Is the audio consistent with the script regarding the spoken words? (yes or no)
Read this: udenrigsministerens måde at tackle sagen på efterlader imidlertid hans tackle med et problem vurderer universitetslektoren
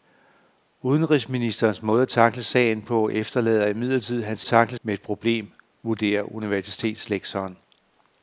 yes